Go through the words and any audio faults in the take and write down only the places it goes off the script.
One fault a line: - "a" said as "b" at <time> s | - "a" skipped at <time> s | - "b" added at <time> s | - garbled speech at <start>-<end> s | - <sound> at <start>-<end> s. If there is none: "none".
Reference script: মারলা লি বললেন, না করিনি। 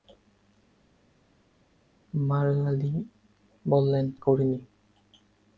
- "না" skipped at 4.1 s